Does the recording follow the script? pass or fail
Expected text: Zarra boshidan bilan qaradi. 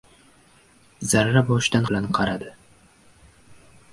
pass